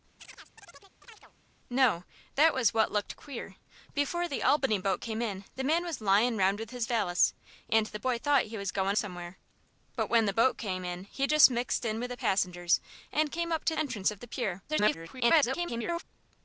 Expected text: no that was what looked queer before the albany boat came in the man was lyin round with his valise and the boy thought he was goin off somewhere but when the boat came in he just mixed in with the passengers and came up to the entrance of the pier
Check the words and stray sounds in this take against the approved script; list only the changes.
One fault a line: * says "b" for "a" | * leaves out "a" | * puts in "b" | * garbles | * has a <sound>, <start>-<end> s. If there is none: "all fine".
* has a chirp, 0.2-1.3 s
* leaves out "off"
* leaves out "the"
* garbles